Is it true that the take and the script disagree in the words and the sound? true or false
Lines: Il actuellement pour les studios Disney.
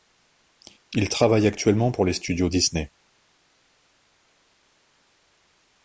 true